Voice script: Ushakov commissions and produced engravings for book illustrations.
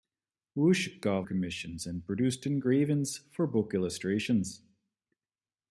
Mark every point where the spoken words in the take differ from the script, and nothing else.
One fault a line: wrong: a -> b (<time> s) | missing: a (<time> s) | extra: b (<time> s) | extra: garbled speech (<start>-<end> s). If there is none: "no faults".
no faults